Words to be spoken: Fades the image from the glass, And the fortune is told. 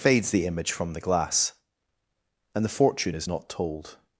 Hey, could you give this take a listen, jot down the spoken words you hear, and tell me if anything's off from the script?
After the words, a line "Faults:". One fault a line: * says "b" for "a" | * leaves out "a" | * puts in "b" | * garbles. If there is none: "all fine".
Fades the image from the glass, And the fortune is not told.
Faults:
* puts in "not"